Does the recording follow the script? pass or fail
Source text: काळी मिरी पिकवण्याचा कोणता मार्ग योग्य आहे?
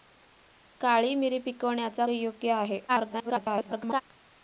fail